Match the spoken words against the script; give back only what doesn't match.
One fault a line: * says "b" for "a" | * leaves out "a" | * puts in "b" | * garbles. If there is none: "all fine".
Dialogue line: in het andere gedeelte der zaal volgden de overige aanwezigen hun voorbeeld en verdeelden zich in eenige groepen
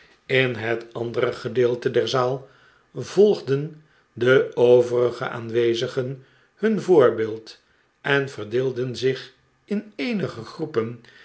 all fine